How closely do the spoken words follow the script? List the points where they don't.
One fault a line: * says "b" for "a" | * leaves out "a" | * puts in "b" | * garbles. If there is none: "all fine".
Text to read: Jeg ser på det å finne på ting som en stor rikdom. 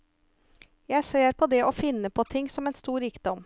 all fine